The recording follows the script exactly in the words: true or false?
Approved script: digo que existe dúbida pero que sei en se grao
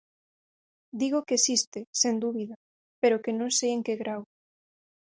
false